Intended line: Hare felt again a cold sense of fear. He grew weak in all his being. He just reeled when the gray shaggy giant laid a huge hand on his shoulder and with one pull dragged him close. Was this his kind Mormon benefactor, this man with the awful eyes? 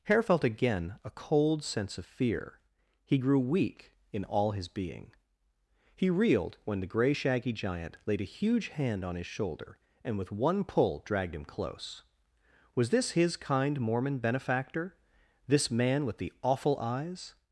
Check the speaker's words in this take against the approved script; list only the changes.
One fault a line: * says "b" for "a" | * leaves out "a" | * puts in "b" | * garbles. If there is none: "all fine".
* leaves out "just"